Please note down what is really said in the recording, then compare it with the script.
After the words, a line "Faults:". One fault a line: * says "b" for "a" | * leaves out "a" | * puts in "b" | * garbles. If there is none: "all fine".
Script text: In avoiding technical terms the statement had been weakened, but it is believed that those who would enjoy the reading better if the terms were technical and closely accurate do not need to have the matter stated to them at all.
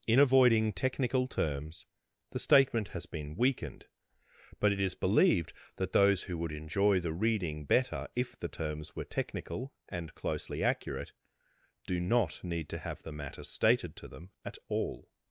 In avoiding technical terms the statement has been weakened, but it is believed that those who would enjoy the reading better if the terms were technical and closely accurate do not need to have the matter stated to them at all.
Faults:
* says "has" for "had"